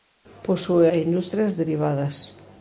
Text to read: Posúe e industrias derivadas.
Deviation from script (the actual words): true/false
false